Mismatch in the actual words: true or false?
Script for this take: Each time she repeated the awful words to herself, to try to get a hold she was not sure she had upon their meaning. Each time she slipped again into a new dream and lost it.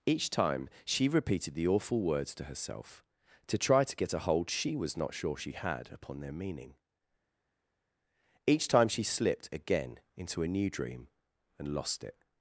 false